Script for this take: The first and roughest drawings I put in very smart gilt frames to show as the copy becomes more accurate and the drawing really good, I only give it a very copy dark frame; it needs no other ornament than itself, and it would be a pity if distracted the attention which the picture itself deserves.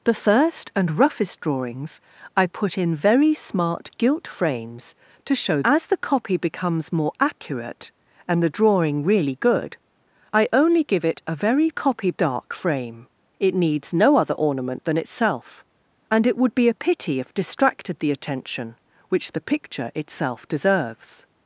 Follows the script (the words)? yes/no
yes